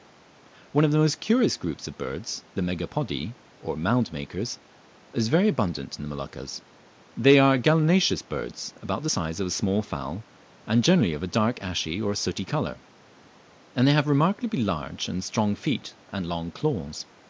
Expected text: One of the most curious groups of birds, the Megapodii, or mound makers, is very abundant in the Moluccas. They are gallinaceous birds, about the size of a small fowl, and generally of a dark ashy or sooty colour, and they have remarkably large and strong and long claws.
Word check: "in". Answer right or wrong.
right